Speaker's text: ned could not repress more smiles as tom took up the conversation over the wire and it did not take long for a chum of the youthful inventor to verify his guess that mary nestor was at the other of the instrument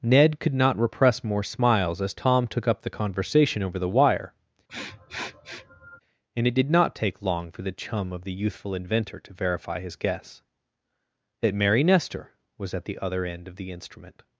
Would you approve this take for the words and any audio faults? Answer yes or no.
no